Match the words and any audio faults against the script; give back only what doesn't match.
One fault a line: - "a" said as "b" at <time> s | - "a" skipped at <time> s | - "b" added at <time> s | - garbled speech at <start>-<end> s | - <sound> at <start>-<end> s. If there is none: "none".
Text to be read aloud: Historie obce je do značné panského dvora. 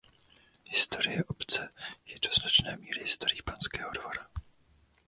- "míry historií" added at 2.8 s